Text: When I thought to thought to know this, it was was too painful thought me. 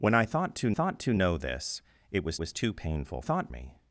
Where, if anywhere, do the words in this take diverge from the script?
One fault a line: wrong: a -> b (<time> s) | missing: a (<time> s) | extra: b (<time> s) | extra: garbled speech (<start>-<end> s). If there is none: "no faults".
no faults